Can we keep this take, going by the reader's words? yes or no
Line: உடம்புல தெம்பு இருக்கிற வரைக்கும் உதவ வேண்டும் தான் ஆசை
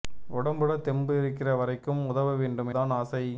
yes